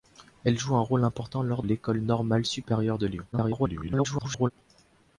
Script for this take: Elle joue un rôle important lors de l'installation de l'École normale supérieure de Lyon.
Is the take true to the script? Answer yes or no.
no